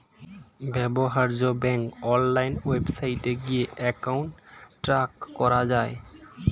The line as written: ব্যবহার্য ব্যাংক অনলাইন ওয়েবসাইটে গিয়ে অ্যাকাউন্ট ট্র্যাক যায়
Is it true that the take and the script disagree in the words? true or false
true